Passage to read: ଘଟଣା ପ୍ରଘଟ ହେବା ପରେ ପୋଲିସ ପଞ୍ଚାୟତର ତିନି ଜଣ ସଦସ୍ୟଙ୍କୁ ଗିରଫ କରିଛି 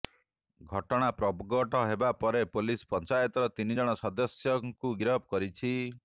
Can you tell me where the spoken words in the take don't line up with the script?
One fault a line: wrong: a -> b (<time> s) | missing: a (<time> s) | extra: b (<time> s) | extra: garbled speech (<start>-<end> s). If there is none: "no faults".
no faults